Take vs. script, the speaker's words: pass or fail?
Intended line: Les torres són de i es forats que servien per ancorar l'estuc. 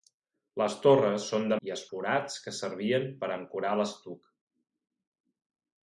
pass